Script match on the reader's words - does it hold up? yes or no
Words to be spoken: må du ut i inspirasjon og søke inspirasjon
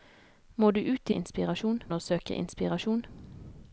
yes